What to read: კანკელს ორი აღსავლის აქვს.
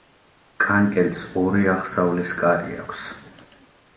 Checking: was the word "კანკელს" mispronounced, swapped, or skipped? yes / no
no